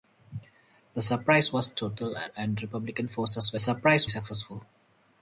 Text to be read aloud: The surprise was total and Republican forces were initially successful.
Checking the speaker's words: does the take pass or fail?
fail